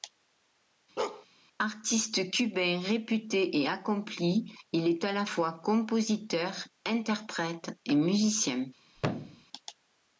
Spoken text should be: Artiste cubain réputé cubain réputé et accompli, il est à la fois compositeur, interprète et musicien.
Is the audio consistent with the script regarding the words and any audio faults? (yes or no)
no